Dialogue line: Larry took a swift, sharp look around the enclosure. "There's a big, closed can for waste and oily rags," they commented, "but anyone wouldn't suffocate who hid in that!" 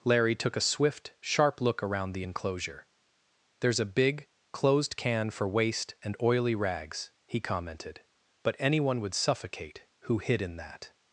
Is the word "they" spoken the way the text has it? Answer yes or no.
no